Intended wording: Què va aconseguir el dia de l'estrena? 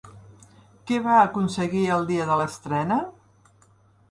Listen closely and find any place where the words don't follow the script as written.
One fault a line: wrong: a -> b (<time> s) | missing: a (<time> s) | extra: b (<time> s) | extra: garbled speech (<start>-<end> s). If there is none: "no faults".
no faults